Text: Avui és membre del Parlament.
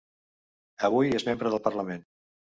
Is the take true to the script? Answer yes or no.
yes